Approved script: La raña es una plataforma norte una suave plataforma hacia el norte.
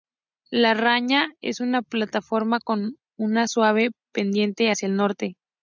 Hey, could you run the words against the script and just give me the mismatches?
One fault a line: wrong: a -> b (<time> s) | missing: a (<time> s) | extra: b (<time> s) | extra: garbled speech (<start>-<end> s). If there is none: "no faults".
wrong: norte -> con (2.6 s)
wrong: plataforma -> pendiente (4.1 s)